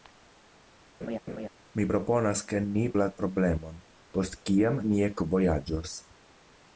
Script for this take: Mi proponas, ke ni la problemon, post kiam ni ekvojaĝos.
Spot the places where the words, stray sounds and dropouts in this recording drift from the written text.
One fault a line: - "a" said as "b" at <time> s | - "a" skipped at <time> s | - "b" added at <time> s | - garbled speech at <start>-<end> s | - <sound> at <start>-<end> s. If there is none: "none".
- laugh at 1.0-1.5 s